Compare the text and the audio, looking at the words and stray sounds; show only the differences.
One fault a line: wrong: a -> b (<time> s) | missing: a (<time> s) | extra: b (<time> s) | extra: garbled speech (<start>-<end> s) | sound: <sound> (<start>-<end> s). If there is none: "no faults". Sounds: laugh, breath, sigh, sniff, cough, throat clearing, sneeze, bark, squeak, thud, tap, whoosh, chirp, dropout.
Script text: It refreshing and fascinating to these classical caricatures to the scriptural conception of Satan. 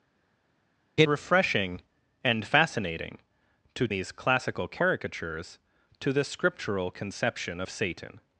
no faults